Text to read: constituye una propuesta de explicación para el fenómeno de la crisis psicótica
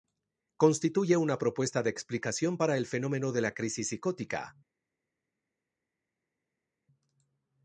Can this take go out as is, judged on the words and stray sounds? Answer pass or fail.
pass